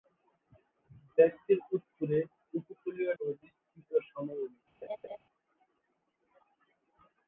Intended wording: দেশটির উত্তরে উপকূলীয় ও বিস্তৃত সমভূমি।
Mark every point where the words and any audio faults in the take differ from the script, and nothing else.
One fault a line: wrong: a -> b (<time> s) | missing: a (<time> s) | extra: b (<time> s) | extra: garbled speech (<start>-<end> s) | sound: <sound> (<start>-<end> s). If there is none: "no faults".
sound: laugh (4.8-5.2 s)